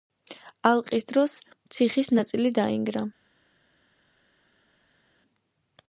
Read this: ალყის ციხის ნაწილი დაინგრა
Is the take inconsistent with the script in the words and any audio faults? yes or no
yes